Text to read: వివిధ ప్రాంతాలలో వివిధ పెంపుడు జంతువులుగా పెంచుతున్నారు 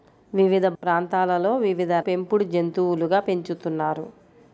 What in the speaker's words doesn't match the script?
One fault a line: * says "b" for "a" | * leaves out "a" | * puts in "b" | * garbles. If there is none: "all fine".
all fine